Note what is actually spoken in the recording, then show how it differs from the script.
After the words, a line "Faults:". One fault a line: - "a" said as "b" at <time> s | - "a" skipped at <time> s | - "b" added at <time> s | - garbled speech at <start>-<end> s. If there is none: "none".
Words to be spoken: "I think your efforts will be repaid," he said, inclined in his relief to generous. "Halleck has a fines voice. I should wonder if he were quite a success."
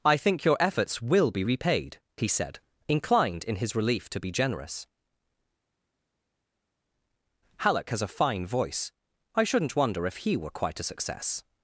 "I think your efforts will be repaid," he said, inclined in his relief to be generous. "Halleck has a fine voice. I shouldn't wonder if he were quite a success."
Faults:
- "be" added at 4.2 s
- "fines" said as "fine" at 8.1 s
- "should" said as "shouldn't" at 9.4 s